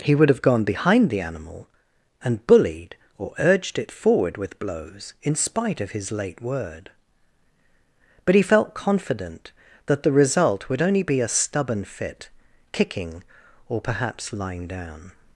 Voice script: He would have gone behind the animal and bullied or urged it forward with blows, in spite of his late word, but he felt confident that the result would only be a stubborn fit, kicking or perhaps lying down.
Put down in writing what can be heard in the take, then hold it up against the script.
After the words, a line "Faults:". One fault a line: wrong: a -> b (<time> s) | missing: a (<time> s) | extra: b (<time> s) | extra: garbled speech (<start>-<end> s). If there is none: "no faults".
He would have gone behind the animal and bullied or urged it forward with blows, in spite of his late word, but he felt confident that the result would only be a stubborn fit, kicking or perhaps lying down.
Faults:
no faults